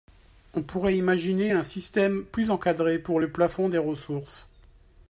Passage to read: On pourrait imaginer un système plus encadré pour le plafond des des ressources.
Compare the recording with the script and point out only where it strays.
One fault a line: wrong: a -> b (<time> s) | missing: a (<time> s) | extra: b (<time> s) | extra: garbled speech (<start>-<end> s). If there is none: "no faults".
missing: des (3.8 s)